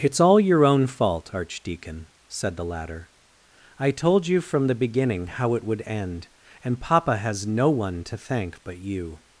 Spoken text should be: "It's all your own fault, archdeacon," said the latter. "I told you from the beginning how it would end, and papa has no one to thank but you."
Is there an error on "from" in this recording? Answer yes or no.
no